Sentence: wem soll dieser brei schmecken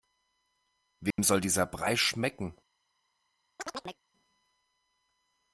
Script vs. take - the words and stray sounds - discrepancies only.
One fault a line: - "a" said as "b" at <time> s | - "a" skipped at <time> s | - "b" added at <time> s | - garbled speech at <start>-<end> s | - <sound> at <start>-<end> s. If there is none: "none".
- dropout at 1.1-1.2 s
- chirp at 3.6-4.0 s